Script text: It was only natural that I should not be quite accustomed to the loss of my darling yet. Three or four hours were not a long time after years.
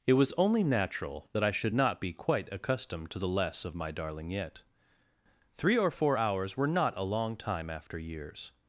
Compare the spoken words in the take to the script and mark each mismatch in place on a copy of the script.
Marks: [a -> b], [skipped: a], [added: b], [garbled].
It was only natural that I should not be quite accustomed to the [loss -> less] of my darling yet. Three or four hours were not a long time after years.